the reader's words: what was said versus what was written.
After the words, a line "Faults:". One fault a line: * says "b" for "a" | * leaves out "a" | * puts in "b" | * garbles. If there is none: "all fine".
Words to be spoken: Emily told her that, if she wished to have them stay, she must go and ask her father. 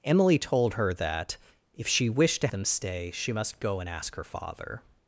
Emily told her that, if she wished to them stay, she must go and ask her father.
Faults:
* leaves out "have"